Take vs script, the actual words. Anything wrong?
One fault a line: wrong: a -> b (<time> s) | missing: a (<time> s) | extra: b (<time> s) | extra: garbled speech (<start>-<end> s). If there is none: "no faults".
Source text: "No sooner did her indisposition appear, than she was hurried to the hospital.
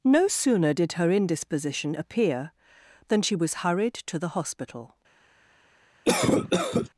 no faults